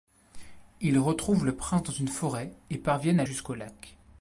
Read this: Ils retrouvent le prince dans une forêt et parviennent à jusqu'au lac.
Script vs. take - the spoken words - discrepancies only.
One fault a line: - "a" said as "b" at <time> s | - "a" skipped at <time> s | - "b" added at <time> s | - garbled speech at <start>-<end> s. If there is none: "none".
none